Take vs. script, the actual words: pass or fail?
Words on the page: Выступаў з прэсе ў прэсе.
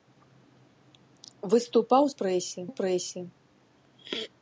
pass